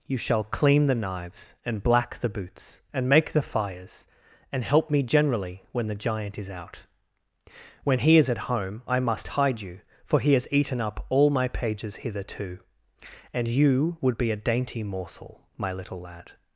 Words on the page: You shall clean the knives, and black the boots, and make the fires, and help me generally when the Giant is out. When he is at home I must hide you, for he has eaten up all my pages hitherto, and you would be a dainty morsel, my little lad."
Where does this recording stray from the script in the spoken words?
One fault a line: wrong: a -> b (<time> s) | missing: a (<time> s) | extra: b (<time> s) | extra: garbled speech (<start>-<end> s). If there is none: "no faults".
no faults